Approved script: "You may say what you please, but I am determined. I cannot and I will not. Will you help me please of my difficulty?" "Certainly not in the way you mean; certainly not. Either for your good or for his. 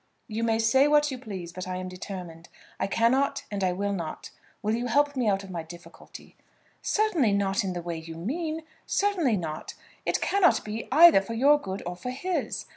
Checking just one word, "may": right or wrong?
right